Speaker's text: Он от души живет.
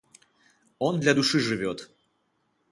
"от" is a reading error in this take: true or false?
true